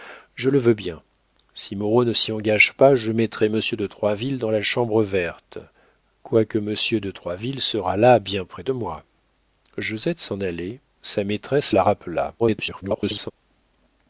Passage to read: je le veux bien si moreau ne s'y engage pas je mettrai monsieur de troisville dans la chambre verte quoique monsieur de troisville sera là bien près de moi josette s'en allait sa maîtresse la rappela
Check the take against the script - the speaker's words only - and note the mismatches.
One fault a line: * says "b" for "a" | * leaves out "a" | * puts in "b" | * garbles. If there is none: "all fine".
* garbles